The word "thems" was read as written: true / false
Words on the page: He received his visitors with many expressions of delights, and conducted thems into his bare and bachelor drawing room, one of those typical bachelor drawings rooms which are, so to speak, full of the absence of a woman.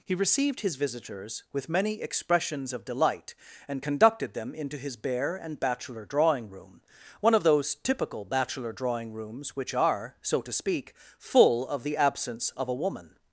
false